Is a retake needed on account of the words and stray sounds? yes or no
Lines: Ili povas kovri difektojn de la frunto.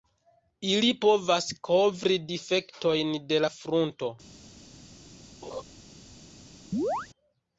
yes